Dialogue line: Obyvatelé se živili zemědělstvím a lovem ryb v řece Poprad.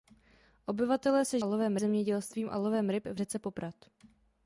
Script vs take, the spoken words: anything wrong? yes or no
yes